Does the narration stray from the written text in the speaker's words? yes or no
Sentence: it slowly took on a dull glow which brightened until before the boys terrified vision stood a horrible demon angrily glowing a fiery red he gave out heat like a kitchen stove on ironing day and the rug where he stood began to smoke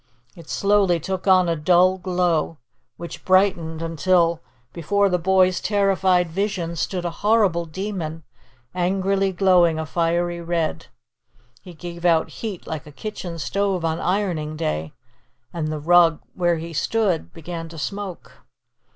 no